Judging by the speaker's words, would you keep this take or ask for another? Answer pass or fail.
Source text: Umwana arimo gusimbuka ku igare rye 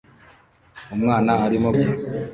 fail